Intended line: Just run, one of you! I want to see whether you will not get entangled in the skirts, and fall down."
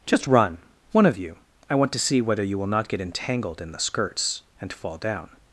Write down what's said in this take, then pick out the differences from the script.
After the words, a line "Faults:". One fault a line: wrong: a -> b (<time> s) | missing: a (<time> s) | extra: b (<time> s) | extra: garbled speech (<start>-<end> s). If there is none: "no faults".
Just run, one of you! I want to see whether you will not get entangled in the skirts, and fall down."
Faults:
no faults